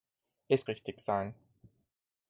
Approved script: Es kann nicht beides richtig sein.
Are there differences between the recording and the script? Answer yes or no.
yes